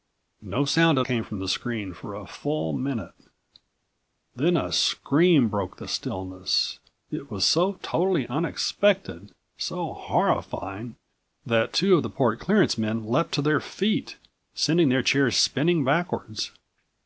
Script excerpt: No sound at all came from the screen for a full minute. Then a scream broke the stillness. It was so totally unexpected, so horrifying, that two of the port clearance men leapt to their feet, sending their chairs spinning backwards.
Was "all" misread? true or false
true